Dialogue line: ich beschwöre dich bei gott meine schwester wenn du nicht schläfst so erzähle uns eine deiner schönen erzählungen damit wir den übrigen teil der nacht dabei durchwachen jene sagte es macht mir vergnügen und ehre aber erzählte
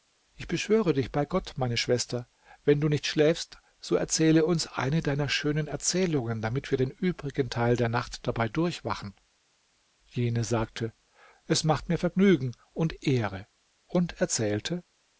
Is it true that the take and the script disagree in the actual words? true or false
true